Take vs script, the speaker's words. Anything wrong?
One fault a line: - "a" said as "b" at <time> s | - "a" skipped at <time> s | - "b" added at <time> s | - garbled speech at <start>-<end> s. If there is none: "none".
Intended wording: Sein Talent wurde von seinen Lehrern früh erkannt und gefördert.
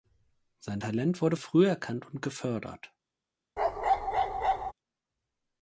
- "von seinen Lehrern" skipped at 1.3 s